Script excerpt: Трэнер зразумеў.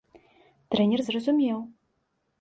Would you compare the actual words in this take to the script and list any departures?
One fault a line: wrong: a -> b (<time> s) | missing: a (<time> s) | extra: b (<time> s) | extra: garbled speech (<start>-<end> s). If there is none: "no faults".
no faults